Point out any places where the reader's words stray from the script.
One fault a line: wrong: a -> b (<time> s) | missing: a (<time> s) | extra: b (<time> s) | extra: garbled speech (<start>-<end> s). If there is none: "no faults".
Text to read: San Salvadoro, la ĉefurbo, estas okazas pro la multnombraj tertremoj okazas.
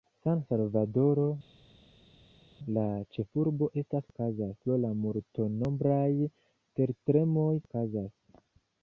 no faults